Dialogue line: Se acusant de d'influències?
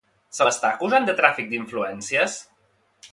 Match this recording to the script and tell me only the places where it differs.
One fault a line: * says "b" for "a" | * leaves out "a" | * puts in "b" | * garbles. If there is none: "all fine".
* puts in "l'està"
* puts in "tràfic"